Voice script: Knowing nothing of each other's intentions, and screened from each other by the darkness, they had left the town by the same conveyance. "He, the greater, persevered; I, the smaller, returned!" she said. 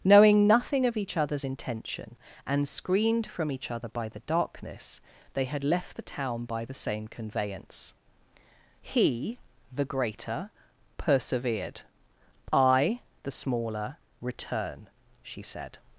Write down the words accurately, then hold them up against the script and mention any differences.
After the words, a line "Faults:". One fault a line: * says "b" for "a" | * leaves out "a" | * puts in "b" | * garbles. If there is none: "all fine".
Knowing nothing of each other's intention, and screened from each other by the darkness, they had left the town by the same conveyance. "He, the greater, persevered; I, the smaller, return!" she said.
Faults:
* says "intention" for "intentions"
* says "return" for "returned"